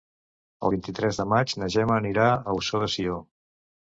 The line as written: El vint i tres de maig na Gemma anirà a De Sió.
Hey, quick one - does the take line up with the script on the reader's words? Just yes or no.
no